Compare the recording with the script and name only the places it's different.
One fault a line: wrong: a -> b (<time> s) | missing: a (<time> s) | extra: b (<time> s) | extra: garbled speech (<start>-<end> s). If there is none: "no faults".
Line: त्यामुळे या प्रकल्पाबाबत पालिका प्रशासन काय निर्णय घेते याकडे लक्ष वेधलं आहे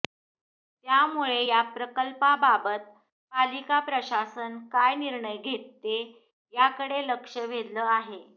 no faults